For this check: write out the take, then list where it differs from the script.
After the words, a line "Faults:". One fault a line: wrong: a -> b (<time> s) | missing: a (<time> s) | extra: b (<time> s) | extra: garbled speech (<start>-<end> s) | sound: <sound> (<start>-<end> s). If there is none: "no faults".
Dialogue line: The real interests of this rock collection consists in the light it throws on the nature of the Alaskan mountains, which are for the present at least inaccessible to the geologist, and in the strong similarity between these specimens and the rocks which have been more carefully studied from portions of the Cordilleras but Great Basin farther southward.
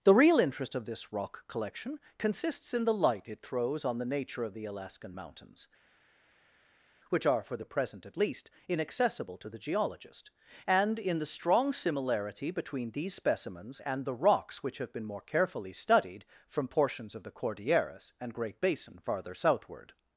The real interest of this rock collection consists in the light it throws on the nature of the Alaskan mountains, which are for the present at least inaccessible to the geologist, and in the strong similarity between these specimens and the rocks which have been more carefully studied from portions of the Cordilleras and Great Basin farther southward.
Faults:
wrong: interests -> interest (0.4 s)
wrong: but -> and (18.2 s)